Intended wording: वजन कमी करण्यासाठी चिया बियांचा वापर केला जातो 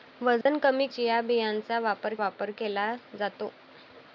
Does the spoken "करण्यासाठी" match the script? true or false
false